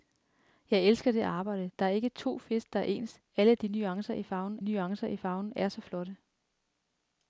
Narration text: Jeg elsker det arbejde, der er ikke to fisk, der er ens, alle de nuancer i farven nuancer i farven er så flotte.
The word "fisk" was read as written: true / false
true